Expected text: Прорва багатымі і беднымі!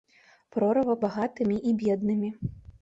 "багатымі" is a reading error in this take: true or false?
false